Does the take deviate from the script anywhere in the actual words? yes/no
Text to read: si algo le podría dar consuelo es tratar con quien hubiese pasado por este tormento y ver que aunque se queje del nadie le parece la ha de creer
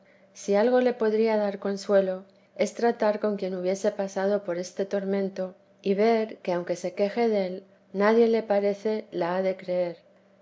no